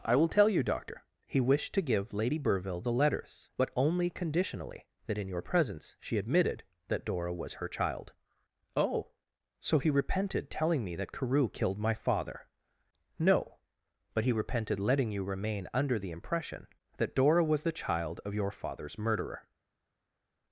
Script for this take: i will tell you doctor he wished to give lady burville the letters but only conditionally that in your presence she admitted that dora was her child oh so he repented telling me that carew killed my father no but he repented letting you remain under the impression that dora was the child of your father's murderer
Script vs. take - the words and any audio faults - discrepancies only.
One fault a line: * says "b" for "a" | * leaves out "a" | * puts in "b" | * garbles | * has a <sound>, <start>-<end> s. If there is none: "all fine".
all fine